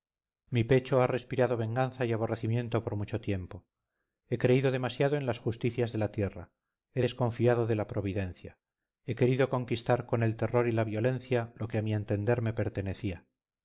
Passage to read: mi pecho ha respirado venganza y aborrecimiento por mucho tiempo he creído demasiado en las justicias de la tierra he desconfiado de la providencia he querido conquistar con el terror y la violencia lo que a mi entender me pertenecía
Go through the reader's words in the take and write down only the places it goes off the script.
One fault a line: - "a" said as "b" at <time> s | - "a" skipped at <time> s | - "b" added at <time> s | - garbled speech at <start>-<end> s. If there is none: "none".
none